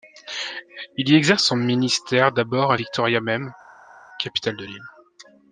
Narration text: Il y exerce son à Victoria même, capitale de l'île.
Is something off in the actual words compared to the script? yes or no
yes